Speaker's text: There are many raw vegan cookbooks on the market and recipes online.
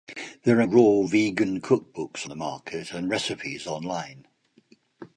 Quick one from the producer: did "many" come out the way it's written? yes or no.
no